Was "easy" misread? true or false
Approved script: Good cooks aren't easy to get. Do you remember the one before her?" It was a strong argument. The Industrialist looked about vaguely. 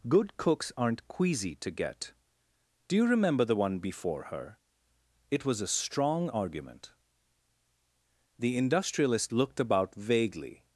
true